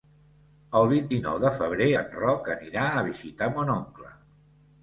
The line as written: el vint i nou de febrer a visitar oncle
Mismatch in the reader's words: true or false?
true